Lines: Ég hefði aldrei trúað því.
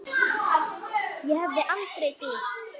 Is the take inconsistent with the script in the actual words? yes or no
yes